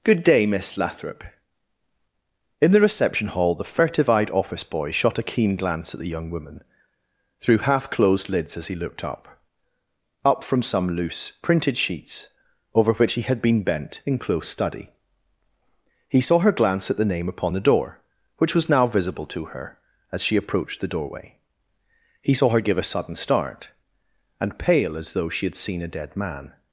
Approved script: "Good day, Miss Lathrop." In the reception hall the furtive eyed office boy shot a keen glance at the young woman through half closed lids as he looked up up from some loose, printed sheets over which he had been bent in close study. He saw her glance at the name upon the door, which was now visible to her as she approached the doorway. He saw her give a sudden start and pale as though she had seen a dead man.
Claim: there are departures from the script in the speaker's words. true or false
false